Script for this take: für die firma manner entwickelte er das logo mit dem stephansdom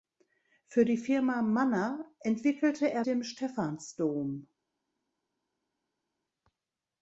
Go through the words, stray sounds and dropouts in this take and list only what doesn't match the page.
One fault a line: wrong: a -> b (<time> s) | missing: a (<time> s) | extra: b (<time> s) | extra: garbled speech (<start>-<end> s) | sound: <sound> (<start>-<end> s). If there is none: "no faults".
missing: das logo mit (3.0 s)